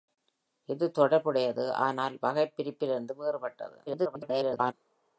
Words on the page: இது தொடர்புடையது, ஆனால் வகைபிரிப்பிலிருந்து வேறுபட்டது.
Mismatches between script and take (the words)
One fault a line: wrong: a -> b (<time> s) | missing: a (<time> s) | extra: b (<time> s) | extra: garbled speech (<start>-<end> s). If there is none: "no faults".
extra: garbled speech (3.9-4.7 s)